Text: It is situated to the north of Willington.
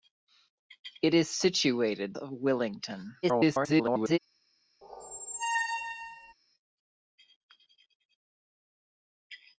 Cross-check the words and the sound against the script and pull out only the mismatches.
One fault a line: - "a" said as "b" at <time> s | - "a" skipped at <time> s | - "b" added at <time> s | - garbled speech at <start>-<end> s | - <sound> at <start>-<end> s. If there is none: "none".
- "to the north" skipped at 2.2 s
- garbled speech at 3.2-4.2 s
- squeak at 4.8-6.3 s